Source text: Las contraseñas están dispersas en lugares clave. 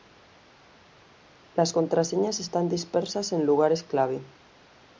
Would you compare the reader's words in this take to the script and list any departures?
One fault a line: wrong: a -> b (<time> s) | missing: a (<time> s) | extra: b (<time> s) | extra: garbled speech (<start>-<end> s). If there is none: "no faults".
no faults